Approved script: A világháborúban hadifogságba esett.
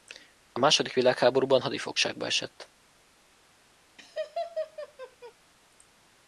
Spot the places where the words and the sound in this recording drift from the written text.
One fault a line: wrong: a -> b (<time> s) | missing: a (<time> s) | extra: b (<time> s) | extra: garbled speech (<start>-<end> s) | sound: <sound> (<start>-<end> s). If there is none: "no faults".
extra: második (0.6 s)
sound: laugh (4.0-5.3 s)